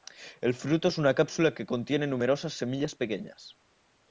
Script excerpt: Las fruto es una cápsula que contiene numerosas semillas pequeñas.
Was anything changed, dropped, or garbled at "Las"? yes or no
yes